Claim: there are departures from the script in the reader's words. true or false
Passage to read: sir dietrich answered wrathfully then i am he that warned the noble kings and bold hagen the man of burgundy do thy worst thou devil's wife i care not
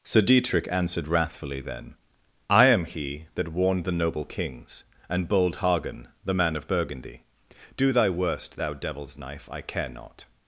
true